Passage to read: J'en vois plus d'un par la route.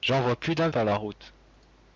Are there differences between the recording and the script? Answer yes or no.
no